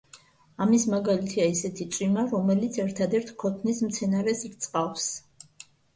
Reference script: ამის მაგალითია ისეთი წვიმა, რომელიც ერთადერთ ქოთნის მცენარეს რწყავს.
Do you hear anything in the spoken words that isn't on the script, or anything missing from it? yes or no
no